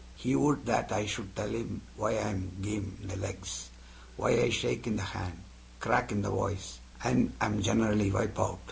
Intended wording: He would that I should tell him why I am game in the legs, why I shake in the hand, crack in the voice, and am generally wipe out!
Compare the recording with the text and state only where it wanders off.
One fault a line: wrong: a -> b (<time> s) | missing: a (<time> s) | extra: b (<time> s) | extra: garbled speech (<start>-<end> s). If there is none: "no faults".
no faults